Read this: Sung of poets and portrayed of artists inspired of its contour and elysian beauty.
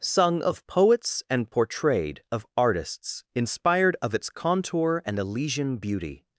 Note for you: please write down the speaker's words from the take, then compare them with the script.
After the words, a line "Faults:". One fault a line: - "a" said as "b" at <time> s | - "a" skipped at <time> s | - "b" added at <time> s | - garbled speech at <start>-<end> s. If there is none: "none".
Sung of poets and portrayed of artists inspired of its contour and elysian beauty.
Faults:
none